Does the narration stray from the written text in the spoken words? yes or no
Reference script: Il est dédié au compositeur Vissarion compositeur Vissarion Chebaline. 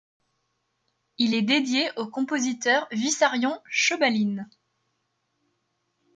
yes